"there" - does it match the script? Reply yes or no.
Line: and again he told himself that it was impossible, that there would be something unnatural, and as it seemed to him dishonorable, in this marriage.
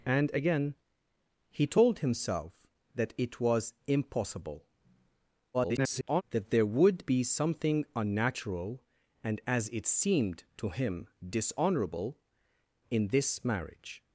yes